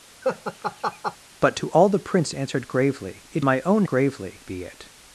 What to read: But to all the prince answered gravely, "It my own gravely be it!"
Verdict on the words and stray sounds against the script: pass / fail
fail